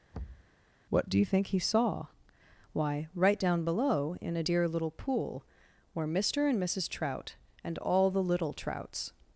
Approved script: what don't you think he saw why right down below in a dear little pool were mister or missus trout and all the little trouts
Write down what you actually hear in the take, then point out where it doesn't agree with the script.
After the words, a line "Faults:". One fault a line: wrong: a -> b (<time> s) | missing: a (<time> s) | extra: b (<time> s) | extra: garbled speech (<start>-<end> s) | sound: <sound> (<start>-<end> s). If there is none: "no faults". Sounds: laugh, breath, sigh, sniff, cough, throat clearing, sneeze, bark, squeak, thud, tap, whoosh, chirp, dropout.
what do you think he saw why right down below in a dear little pool were mister and missus trout and all the little trouts
Faults:
sound: thud (0.1-0.5 s)
wrong: don't -> do (1.1 s)
wrong: or -> and (6.5 s)